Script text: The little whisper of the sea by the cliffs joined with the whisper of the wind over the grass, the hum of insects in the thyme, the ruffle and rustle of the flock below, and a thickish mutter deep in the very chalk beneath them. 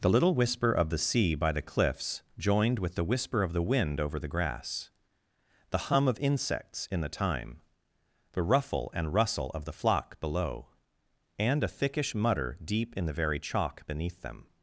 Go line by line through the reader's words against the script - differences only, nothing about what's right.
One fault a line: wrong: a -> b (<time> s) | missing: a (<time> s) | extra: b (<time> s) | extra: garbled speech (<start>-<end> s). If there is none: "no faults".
no faults